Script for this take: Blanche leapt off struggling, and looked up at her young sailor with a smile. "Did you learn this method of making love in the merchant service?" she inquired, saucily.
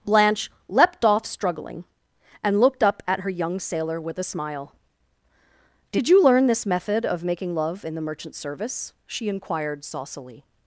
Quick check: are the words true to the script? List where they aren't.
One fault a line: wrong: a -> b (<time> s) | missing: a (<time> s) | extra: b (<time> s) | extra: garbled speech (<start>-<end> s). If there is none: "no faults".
no faults